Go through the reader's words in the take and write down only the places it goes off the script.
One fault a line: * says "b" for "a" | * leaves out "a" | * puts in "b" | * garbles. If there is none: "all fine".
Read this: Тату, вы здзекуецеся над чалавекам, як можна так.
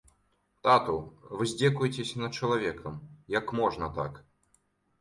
all fine